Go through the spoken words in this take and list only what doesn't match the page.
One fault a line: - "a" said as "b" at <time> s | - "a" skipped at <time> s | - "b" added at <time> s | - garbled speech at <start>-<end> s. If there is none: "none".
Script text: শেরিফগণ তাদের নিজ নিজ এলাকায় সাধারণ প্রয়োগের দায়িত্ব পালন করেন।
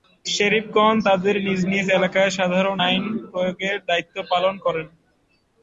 - "আইন" added at 2.9 s